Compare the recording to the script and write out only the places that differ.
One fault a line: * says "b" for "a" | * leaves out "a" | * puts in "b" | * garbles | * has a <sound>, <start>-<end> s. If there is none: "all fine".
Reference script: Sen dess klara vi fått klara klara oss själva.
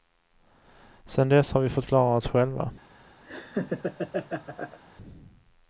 * says "har" for "klara"
* leaves out "klara"
* has a laugh, 3.2-4.8 s